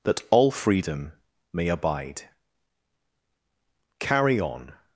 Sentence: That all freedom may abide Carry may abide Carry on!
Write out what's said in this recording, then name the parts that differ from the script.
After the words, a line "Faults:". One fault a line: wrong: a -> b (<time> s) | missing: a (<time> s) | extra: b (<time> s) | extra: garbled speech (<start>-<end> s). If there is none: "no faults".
That all freedom may abide Carry on!
Faults:
missing: may abide Carry (4.4 s)